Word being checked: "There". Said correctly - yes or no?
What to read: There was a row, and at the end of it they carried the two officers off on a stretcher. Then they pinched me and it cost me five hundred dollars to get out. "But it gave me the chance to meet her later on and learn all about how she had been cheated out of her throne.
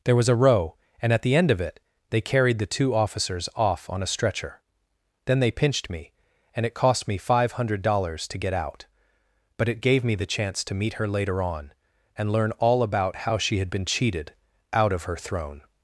yes